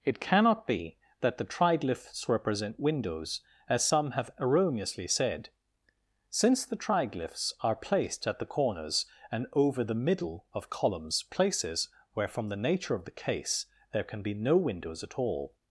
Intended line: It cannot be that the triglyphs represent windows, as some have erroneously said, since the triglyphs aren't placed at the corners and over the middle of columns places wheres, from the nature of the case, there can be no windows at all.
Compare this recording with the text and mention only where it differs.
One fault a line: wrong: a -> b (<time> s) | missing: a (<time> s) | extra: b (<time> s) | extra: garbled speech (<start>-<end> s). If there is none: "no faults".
wrong: aren't -> are (7.6 s)
wrong: wheres -> where (12.1 s)